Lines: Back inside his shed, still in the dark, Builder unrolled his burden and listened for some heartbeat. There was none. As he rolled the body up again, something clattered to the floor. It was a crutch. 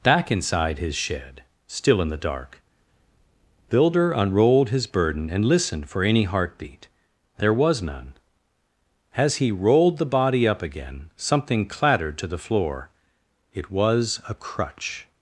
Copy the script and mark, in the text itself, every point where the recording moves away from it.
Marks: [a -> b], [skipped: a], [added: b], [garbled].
Back inside his shed, still in the dark, Builder unrolled his burden and listened for [some -> any] heartbeat. There was none. As he rolled the body up again, something clattered to the floor. It was a crutch.